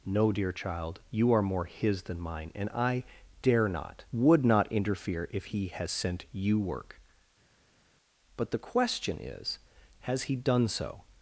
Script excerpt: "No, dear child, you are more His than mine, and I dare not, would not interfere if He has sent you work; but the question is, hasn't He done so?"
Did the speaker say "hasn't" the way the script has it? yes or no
no